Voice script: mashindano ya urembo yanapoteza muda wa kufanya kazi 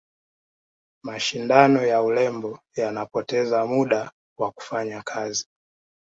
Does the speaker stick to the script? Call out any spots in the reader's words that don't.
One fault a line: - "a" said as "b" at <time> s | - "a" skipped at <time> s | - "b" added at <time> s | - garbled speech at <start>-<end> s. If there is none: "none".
none